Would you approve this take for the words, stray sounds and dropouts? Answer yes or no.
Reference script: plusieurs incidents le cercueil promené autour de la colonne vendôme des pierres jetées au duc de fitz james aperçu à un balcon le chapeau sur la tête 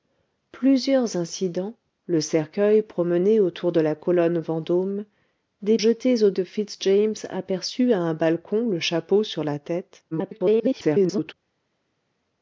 no